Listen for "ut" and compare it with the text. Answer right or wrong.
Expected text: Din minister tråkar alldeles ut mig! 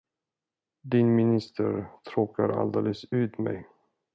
right